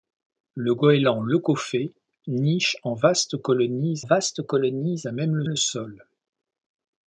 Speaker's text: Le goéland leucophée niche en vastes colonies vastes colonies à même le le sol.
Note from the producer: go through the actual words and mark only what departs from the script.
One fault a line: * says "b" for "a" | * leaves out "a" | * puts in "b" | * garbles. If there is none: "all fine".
all fine